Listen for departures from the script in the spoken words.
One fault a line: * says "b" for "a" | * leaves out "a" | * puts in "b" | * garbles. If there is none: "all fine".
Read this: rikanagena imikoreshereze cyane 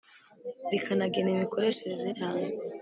all fine